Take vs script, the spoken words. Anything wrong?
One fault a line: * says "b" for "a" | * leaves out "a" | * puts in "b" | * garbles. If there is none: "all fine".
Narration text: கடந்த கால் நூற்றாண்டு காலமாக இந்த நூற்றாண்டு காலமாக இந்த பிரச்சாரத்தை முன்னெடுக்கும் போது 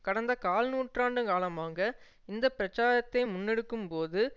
* leaves out "நூற்றாண்டு காலமாக இந்த"